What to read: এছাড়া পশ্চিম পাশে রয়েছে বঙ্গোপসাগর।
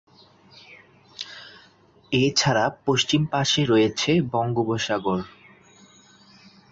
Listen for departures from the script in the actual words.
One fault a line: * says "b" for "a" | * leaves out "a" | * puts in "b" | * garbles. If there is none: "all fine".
all fine